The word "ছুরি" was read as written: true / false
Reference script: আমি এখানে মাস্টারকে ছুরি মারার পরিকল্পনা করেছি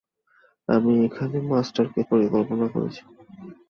false